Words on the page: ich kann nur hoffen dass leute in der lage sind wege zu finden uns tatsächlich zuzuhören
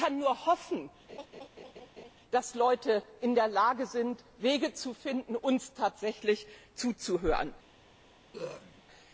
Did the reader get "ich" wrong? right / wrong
right